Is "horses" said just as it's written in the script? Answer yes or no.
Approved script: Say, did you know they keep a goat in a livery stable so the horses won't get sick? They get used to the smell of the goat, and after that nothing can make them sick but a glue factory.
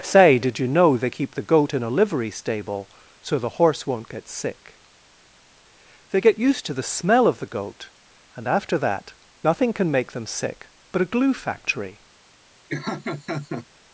no